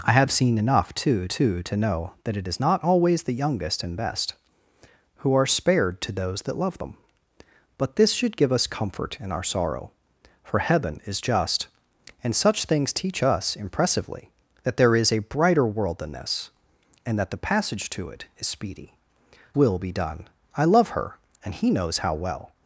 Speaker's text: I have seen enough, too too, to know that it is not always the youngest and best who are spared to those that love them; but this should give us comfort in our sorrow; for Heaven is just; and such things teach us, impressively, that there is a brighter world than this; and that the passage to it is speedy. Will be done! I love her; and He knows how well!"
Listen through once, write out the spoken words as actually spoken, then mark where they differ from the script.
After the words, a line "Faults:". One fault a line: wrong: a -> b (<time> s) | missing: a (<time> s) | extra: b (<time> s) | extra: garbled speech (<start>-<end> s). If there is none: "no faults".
I have seen enough, too too, to know that it is not always the youngest and best who are spared to those that love them; but this should give us comfort in our sorrow; for Heaven is just; and such things teach us, impressively, that there is a brighter world than this; and that the passage to it is speedy. Will be done! I love her; and He knows how well!"
Faults:
no faults